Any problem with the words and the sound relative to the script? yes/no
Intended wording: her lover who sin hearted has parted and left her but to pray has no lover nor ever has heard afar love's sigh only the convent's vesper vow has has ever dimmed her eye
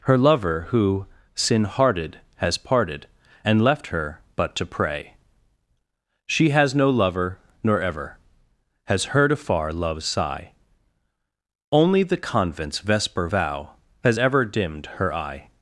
yes